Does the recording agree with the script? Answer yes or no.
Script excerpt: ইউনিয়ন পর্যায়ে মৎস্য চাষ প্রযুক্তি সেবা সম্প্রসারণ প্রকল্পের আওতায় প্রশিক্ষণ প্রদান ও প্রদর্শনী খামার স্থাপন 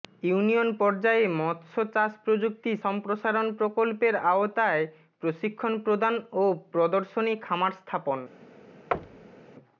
no